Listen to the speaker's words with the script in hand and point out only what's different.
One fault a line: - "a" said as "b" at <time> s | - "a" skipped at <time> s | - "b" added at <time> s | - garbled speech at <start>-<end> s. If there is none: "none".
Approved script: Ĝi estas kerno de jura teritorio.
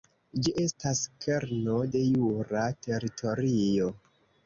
none